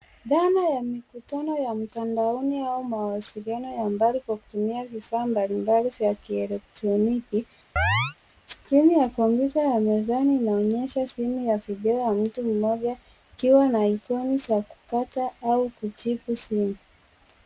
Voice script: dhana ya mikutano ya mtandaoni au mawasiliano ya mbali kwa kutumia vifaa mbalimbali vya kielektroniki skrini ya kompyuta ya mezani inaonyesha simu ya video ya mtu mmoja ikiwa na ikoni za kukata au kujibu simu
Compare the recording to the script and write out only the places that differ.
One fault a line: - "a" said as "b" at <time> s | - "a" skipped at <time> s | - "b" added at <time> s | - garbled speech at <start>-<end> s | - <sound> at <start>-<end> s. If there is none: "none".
- chirp at 7.8-8.2 s